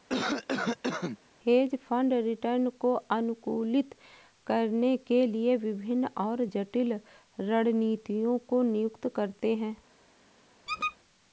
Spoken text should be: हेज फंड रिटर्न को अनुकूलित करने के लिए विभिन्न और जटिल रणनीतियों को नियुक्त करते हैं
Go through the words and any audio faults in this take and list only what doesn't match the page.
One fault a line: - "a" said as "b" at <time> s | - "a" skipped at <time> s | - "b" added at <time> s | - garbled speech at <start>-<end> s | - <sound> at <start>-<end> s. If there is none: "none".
- cough at 0.1-1.2 s
- squeak at 10.7-11.0 s